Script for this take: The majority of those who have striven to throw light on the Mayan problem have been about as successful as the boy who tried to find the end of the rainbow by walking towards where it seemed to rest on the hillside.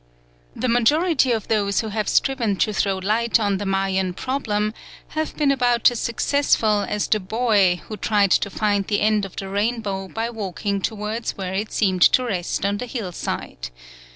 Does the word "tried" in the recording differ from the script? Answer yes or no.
no